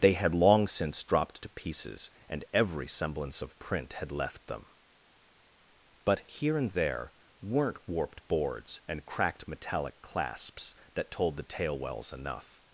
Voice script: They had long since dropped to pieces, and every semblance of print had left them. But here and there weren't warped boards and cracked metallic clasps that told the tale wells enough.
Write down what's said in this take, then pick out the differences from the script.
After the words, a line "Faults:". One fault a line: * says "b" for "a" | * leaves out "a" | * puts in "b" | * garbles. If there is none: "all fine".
They had long since dropped to pieces, and every semblance of print had left them. But here and there weren't warped boards and cracked metallic clasps that told the tale wells enough.
Faults:
all fine